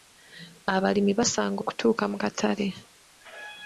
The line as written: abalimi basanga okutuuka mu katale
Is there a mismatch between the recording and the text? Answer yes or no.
no